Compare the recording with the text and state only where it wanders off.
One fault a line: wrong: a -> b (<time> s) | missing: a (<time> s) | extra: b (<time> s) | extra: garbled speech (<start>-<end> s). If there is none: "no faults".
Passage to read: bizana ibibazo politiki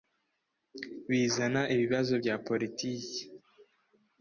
extra: bya (2.2 s)